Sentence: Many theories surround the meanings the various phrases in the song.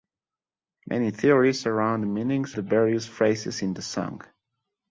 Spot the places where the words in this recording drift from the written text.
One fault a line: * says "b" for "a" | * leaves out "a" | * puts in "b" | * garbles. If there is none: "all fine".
all fine